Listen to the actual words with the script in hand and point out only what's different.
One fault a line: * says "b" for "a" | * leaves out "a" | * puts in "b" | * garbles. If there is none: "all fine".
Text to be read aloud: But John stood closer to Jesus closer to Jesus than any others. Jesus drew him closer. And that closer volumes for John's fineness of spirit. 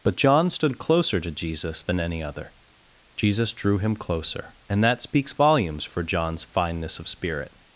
* leaves out "closer to Jesus"
* says "other" for "others"
* says "speaks" for "closer"